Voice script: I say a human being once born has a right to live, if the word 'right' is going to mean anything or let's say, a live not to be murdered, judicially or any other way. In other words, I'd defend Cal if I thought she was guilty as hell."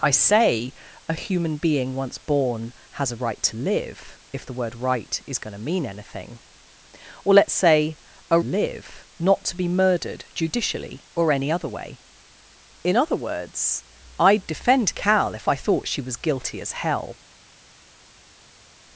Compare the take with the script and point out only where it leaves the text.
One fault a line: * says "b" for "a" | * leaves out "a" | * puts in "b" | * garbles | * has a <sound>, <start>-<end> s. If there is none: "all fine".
all fine